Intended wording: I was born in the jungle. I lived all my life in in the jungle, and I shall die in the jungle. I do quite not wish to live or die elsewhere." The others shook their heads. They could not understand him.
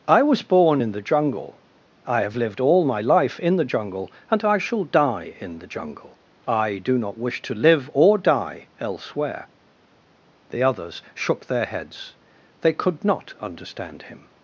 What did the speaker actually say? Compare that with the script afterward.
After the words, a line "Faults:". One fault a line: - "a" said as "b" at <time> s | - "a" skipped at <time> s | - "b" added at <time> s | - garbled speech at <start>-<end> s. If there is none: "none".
I was born in the jungle. I have lived all my life in the jungle, and I shall die in the jungle. I do not wish to live or die elsewhere." The others shook their heads. They could not understand him.
Faults:
- "have" added at 2.2 s
- "in" skipped at 3.6 s
- "quite" skipped at 7.0 s